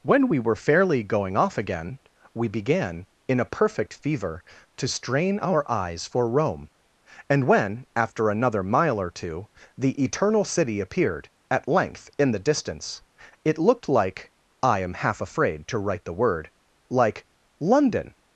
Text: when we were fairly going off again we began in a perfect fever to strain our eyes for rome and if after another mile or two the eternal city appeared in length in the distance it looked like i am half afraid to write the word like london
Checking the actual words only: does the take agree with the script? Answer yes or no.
no